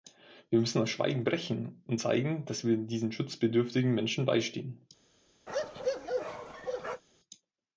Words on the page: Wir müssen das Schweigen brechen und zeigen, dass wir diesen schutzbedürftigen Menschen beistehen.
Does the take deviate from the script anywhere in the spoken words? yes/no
no